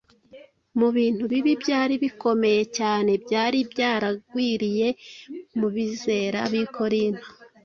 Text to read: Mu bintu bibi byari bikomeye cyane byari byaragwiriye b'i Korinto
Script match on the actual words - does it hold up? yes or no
no